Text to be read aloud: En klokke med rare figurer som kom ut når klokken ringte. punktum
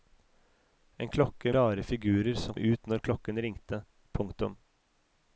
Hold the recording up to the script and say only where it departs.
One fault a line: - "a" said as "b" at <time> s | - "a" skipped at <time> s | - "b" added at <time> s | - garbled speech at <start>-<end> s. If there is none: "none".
- "med" skipped at 1.5 s
- "kom" skipped at 2.5 s